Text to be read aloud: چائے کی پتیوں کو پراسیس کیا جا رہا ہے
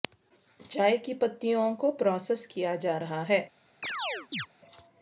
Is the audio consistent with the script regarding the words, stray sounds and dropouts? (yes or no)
no